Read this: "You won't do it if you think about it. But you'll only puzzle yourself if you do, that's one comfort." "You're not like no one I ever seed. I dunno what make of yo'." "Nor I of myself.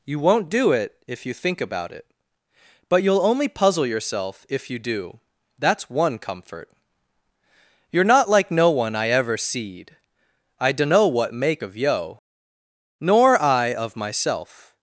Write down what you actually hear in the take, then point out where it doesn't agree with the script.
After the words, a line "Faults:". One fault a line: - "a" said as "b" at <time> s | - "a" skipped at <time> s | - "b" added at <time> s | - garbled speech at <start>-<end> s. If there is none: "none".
"You won't do it if you think about it. But you'll only puzzle yourself if you do, that's one comfort." "You're not like no one I ever seed. I dunno what make of yo'." "Nor I of myself.
Faults:
none